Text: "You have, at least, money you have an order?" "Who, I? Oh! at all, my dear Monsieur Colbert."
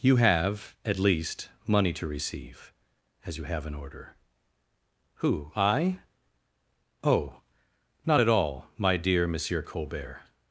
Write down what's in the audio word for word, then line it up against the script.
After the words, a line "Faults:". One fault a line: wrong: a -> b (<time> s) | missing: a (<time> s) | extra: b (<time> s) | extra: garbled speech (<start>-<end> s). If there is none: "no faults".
"You have, at least, money to receive, as you have an order?" "Who, I? Oh! not at all, my dear Monsieur Colbert."
Faults:
extra: to receive as (1.9 s)
extra: not (8.1 s)